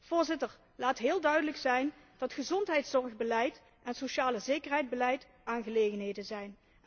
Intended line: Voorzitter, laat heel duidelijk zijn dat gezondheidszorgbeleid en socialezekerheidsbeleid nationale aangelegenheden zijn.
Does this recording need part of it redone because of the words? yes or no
yes